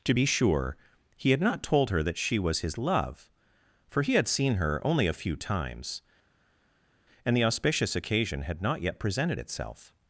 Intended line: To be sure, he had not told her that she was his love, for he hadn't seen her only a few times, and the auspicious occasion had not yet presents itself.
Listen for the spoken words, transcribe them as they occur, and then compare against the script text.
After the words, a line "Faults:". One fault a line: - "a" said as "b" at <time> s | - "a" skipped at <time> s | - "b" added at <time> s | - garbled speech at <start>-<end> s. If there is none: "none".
To be sure, he had not told her that she was his love, for he had seen her only a few times, and the auspicious occasion had not yet presented itself.
Faults:
- "hadn't" said as "had" at 4.1 s
- "presents" said as "presented" at 9.0 s